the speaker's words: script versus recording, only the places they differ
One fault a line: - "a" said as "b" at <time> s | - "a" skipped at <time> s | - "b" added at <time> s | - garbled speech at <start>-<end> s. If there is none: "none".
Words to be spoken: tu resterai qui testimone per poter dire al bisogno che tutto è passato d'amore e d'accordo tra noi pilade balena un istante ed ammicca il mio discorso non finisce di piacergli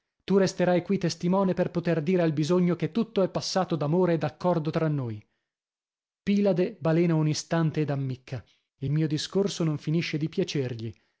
none